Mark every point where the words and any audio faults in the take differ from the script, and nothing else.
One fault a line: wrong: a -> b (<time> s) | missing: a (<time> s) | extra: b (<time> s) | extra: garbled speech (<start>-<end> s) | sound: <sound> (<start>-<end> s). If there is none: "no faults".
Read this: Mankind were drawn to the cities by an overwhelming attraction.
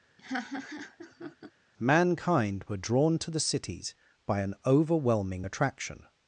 sound: laugh (0.2-1.5 s)